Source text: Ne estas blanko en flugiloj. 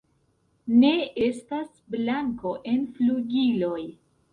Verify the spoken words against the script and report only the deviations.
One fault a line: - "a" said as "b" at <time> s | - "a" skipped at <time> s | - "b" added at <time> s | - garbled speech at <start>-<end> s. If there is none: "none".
none